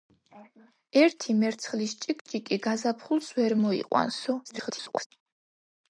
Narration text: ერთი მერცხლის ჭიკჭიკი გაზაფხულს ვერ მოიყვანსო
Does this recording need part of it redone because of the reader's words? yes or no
yes